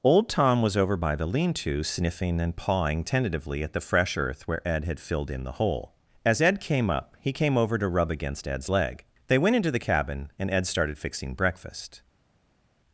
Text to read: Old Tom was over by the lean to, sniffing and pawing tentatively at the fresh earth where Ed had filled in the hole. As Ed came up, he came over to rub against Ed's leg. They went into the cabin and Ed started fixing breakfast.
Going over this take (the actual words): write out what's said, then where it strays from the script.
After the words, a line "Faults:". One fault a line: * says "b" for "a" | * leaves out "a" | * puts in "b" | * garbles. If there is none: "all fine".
Old Tom was over by the lean to, sniffing and pawing tentatively at the fresh earth where Ed had filled in the hole. As Ed came up, he came over to rub against Ed's leg. They went into the cabin and Ed started fixing breakfast.
Faults:
all fine